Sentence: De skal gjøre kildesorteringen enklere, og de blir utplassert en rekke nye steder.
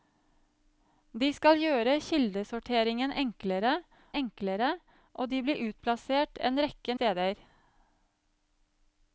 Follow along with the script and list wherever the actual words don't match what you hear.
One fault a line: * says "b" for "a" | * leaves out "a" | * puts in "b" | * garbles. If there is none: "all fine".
* puts in "enklere"
* leaves out "nye"